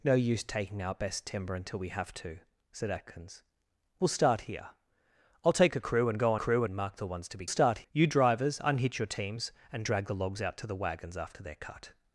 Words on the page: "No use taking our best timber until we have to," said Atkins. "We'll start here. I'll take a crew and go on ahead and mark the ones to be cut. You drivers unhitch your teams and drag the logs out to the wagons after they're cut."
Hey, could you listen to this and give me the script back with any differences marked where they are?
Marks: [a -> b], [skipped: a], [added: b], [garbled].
"No use taking our best timber until we have to," said Atkins. "We'll start here. I'll take a crew and go on [ahead -> crew] and mark the ones to be [cut. -> start] You drivers unhitch your teams and drag the logs out to the wagons after they're cut."